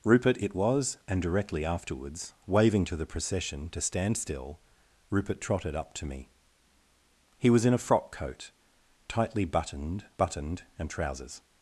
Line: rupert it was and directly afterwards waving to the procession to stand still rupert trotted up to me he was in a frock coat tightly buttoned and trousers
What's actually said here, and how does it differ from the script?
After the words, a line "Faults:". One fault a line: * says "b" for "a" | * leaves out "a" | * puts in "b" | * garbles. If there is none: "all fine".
rupert it was and directly afterwards waving to the procession to stand still rupert trotted up to me he was in a frock coat tightly buttoned buttoned and trousers
Faults:
* puts in "buttoned"